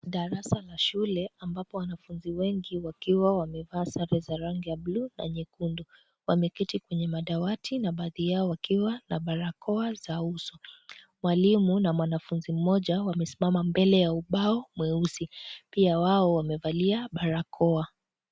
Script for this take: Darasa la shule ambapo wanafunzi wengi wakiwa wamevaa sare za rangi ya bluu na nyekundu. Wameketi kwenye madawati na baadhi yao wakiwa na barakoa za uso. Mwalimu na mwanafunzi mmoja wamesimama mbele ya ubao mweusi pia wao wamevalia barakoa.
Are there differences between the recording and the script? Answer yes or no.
no